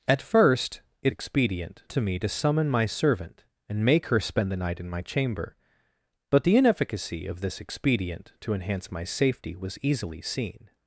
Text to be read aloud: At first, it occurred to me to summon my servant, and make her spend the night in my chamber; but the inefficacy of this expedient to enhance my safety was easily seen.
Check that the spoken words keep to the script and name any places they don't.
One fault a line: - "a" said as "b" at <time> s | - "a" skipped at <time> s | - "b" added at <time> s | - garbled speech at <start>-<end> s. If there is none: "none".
- "occurred" said as "expedient" at 1.1 s